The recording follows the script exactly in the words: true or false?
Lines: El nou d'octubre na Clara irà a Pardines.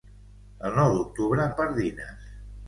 false